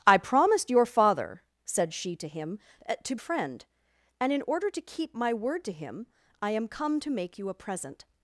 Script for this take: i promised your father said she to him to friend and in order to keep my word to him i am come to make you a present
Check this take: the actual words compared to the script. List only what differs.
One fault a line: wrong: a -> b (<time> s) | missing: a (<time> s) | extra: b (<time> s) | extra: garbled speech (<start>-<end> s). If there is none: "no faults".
no faults